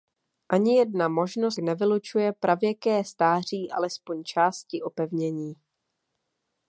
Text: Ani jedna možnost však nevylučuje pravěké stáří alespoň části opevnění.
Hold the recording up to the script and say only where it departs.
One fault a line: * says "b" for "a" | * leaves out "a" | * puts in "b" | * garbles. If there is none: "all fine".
* leaves out "však"